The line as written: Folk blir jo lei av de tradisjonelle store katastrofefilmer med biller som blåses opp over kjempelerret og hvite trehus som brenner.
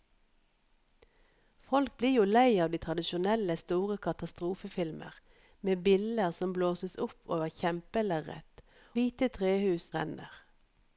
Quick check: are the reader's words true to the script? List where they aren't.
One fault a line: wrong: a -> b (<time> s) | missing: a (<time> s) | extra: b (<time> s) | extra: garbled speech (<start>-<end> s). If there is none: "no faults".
missing: og (8.7 s)
missing: som (9.9 s)